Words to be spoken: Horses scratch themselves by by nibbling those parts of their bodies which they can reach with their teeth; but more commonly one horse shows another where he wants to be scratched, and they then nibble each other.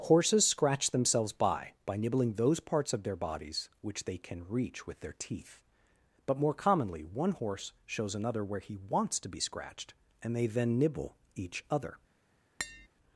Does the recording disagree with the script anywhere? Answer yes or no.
no